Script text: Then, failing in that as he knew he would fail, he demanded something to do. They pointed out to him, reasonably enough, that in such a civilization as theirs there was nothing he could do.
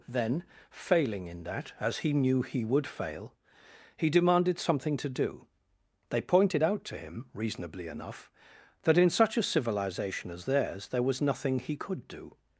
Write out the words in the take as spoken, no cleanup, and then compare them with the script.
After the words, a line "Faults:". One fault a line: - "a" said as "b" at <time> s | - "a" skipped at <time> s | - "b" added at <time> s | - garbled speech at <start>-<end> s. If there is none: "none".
Then, failing in that as he knew he would fail, he demanded something to do. They pointed out to him, reasonably enough, that in such a civilization as theirs there was nothing he could do.
Faults:
none